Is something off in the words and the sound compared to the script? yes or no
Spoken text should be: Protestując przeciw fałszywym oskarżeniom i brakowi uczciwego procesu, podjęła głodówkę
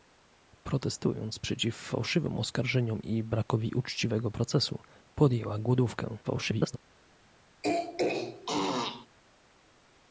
yes